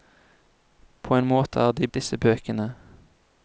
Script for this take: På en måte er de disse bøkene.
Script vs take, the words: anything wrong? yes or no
no